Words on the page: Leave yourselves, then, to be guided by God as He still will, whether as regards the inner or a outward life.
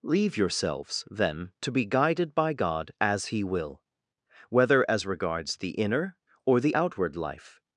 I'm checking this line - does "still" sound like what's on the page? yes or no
no